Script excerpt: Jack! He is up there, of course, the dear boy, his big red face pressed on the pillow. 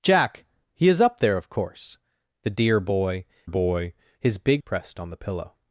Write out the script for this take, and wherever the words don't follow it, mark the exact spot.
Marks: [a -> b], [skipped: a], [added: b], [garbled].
Jack! He is up there, of course, the dear boy, [added: boy] his big [skipped: red face] pressed on the pillow.